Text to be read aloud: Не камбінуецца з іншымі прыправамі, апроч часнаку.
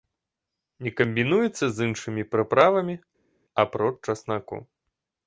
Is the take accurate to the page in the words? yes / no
yes